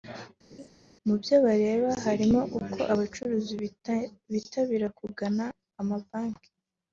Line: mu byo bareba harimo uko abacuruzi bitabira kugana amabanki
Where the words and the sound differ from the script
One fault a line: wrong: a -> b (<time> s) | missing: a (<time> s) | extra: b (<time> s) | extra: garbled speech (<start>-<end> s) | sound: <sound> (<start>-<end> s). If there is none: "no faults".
sound: laugh (0.5-0.7 s)